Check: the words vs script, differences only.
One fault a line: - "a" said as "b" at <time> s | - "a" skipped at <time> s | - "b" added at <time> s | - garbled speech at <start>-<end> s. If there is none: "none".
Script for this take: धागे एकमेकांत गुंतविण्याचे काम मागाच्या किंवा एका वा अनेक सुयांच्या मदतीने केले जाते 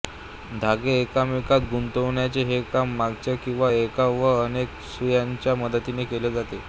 - "हे" added at 2.5 s